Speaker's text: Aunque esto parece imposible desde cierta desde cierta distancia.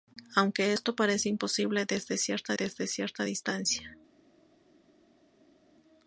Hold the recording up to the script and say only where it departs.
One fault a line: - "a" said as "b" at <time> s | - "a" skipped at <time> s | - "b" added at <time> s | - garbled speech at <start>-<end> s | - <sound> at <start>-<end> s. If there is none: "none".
none